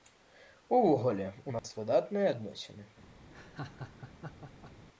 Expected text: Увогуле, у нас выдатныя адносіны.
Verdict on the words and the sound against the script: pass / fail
fail